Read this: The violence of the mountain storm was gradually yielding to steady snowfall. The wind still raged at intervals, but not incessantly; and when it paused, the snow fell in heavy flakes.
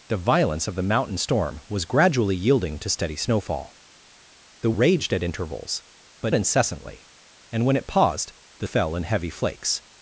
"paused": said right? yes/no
yes